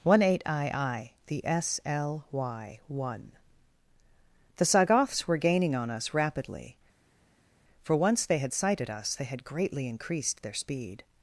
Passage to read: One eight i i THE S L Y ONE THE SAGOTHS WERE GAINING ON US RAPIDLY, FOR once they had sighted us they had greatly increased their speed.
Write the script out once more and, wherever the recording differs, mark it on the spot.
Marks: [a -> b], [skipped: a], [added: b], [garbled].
One eight i i THE S L Y ONE THE SAGOTHS WERE GAINING ON US RAPIDLY, FOR once they had sighted us they had greatly increased their speed.